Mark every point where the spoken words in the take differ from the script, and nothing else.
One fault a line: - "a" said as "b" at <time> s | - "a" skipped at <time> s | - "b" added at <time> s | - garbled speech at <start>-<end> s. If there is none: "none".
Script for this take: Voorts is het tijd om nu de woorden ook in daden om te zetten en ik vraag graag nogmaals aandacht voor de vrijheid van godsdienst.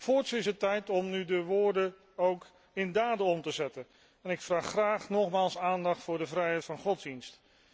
none